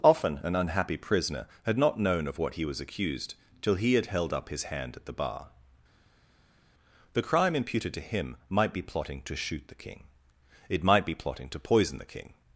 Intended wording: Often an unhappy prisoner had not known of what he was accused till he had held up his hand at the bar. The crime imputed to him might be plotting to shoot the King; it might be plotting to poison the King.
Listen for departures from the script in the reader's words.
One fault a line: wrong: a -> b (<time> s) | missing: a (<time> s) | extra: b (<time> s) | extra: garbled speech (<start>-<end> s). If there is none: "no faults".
no faults